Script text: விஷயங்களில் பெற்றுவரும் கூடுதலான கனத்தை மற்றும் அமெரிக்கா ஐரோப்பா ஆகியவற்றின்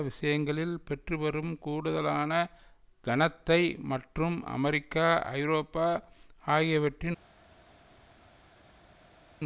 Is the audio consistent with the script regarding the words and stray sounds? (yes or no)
yes